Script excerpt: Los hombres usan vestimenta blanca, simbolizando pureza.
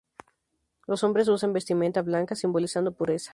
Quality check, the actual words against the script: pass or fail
pass